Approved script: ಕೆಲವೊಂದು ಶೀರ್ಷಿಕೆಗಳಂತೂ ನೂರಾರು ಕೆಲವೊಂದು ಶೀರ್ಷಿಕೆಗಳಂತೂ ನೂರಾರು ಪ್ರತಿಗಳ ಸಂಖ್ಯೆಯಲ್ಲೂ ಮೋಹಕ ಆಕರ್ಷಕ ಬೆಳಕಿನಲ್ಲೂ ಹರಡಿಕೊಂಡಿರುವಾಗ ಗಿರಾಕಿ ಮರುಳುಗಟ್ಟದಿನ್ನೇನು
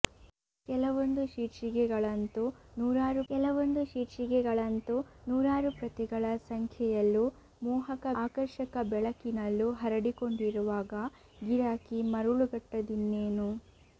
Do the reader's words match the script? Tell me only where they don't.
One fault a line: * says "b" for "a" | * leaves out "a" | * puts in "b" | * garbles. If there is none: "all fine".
all fine